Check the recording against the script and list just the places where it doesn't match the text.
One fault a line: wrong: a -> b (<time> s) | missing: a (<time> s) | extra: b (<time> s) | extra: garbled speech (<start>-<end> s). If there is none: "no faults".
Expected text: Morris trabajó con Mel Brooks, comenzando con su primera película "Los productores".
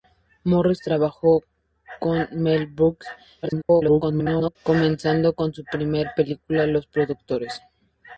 extra: garbled speech (3.4-4.6 s)